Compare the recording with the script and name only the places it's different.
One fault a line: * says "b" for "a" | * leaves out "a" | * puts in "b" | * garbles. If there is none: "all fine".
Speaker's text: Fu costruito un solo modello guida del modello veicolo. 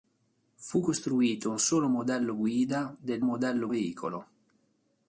all fine